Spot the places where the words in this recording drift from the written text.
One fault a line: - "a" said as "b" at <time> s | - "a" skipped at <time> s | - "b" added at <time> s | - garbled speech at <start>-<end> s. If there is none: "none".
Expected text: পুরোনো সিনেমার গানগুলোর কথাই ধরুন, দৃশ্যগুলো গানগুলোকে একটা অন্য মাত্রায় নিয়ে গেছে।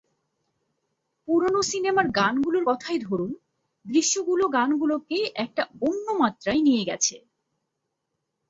none